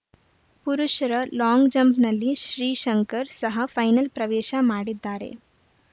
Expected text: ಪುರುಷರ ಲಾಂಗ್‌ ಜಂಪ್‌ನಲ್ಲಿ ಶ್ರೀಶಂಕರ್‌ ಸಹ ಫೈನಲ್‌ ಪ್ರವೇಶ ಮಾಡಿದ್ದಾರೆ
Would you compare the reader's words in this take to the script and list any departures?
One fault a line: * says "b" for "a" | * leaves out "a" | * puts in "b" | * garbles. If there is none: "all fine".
all fine